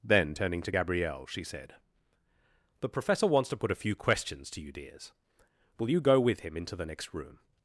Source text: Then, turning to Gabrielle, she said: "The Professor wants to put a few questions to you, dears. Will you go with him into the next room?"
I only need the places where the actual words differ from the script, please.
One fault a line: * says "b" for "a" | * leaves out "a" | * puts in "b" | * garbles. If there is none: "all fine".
all fine